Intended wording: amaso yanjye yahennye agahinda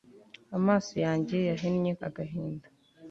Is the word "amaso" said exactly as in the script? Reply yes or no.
yes